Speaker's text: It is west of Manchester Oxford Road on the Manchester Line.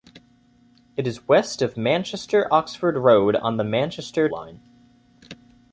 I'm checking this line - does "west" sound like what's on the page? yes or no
yes